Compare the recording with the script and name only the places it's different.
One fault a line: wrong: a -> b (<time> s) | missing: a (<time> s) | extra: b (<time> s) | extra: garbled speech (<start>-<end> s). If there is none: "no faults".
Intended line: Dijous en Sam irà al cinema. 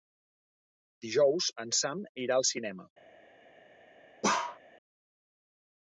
no faults